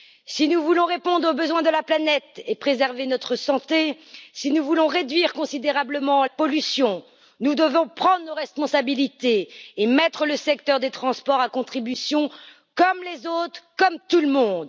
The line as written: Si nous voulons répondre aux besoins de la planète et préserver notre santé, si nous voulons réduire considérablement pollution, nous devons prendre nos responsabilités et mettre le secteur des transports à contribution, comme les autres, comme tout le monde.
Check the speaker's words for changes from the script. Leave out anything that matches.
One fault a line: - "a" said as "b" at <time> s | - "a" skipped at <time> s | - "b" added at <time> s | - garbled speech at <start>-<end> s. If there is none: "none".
none